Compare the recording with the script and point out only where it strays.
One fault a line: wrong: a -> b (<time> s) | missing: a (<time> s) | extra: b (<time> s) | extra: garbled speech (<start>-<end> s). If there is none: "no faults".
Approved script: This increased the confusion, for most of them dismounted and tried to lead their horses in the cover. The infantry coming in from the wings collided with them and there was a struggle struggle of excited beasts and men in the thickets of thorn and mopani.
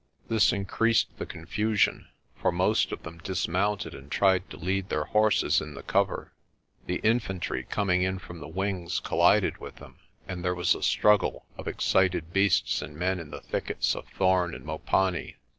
missing: struggle (11.4 s)